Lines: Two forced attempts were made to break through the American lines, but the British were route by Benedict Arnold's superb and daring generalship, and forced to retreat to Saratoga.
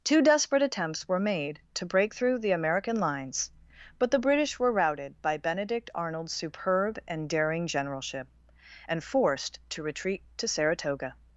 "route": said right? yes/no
no